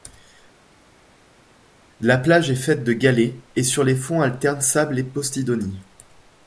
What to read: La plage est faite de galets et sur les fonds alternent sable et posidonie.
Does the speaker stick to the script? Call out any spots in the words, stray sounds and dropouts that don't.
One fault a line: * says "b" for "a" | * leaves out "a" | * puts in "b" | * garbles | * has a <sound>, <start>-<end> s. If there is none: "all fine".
all fine